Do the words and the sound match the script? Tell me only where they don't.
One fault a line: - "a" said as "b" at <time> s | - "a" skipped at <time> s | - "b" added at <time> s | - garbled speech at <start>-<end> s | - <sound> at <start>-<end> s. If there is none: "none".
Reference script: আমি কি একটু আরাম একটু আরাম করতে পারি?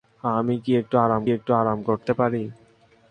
none